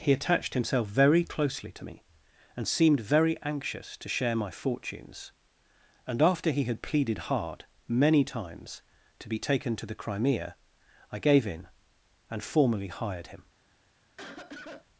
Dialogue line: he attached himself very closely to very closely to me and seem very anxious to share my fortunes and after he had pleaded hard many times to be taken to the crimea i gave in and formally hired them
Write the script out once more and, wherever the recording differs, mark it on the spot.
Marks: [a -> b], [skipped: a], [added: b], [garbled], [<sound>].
he attached himself very closely to [skipped: very closely to] me and [seem -> seemed] very anxious to share my fortunes and after he had pleaded hard many times to be taken to the crimea i gave in and formally hired [them -> him] [cough]